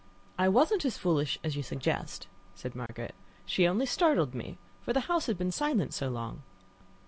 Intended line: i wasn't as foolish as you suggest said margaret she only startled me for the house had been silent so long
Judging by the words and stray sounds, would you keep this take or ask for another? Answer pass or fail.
fail